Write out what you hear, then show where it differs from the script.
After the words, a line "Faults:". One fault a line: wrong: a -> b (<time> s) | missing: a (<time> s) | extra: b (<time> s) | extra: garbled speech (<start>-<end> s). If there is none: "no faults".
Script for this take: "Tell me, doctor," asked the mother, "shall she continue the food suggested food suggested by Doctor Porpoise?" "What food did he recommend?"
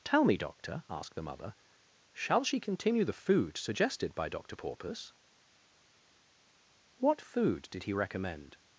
"Tell me, doctor," asked the mother, "shall she continue the food suggested by Doctor Porpoise?" "What food did he recommend?"
Faults:
missing: food suggested (4.2 s)